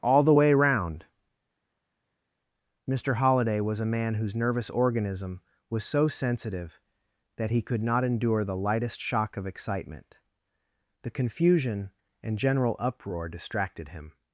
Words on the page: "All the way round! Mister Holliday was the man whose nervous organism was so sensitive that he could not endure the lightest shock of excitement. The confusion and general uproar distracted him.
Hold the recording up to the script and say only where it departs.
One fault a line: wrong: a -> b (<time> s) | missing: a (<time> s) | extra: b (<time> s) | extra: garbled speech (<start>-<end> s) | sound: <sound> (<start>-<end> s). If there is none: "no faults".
wrong: the -> a (3.8 s)